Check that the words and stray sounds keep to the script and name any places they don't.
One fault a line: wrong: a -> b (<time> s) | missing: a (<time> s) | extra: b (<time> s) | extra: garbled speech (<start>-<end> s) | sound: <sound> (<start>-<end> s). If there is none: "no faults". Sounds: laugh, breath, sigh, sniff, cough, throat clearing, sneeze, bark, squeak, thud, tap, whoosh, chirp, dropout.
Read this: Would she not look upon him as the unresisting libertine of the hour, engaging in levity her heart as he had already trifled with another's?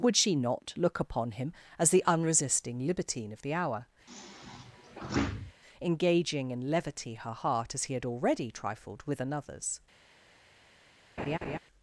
sound: sigh (4.1-5.5 s)
sound: laugh (11.2-11.6 s)